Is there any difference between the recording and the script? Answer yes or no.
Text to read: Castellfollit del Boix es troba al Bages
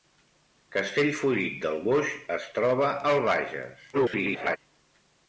yes